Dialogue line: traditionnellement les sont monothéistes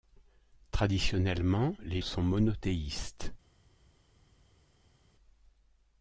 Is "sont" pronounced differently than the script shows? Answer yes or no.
no